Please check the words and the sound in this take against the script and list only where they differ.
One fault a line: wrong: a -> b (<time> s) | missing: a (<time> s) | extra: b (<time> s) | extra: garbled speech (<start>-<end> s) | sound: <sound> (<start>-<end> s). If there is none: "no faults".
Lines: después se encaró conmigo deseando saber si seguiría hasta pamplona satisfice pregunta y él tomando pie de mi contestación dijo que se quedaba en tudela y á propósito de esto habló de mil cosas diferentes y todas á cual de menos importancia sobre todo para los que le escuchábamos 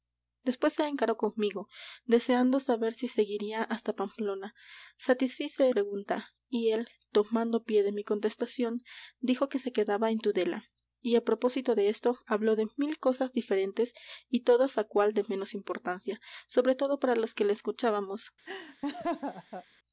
sound: laugh (18.5-19.7 s)